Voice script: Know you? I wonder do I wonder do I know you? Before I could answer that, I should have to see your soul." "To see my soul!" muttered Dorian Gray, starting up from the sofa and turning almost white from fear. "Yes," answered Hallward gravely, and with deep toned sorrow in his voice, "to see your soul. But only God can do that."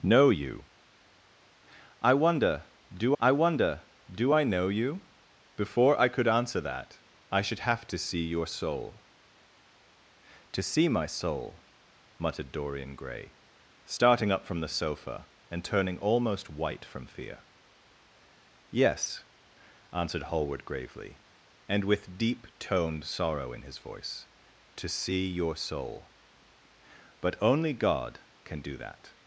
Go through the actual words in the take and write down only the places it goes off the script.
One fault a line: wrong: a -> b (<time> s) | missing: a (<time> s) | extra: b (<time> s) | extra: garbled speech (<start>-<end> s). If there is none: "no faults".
no faults